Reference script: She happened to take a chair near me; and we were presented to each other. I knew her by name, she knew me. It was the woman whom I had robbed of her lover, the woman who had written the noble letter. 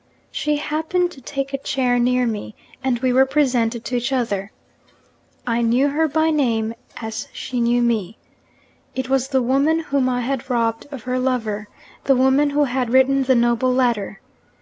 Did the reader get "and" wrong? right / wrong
right